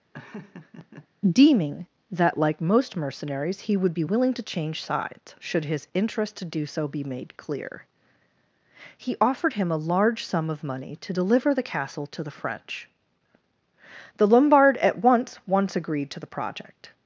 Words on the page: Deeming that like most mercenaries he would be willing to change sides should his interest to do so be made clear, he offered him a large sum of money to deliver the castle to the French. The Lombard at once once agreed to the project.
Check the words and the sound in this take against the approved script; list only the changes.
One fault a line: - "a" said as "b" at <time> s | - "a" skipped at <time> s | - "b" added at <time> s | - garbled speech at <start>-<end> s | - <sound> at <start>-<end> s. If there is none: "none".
- laugh at 0.1-1.1 s